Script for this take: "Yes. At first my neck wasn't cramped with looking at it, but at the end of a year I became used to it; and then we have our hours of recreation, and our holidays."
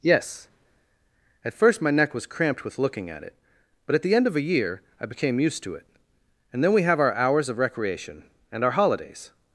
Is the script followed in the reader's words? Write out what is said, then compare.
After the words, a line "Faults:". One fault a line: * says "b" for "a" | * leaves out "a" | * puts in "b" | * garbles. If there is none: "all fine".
"Yes. At first my neck was cramped with looking at it, but at the end of a year I became used to it; and then we have our hours of recreation, and our holidays."
Faults:
* says "was" for "wasn't"